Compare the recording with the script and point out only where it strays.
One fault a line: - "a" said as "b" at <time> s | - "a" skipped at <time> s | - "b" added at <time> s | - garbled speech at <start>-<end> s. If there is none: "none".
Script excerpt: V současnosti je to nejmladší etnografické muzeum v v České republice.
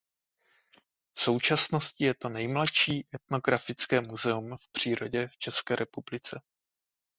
- "přírodě" added at 4.7 s